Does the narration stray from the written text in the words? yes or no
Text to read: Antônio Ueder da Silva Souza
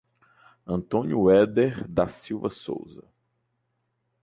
no